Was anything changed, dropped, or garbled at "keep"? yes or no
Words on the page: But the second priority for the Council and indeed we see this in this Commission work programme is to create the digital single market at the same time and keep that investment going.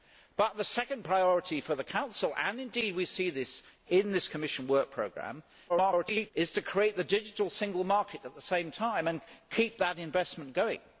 no